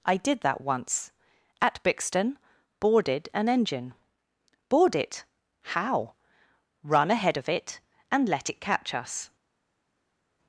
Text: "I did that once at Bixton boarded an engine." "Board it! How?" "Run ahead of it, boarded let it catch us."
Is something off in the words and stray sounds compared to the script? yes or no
yes